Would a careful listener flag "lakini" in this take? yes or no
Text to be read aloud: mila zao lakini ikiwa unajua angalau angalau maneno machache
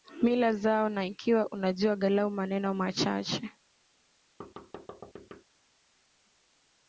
yes